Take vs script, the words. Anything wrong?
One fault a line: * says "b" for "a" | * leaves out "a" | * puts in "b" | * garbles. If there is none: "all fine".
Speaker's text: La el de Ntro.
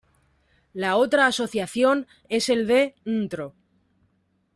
* puts in "otra Asociación es"